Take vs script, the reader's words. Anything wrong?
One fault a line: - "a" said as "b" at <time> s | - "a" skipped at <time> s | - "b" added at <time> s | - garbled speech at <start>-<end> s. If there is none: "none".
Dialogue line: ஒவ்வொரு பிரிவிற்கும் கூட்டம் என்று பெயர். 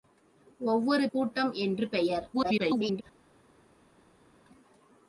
- "பிரிவிற்கும்" skipped at 1.1 s
- garbled speech at 2.3-3.0 s